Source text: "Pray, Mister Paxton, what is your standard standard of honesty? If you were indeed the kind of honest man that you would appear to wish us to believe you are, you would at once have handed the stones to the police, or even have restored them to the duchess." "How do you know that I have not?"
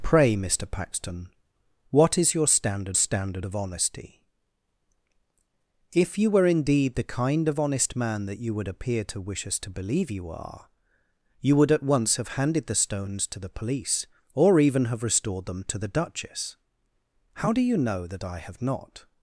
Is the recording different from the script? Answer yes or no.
no